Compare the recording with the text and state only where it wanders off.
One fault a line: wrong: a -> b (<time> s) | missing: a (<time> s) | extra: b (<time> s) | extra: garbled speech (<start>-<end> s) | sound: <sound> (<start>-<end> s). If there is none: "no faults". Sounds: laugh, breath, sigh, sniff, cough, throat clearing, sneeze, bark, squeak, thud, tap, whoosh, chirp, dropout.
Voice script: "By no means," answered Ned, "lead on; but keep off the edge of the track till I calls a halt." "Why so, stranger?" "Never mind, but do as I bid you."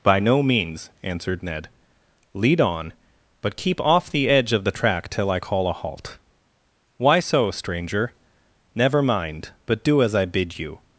wrong: calls -> call (5.4 s)